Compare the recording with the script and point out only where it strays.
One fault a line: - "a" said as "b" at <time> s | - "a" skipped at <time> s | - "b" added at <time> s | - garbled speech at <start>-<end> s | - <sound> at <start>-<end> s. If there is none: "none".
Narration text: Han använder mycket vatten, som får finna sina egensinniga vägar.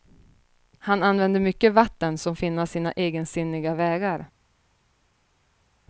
- "får" skipped at 2.4 s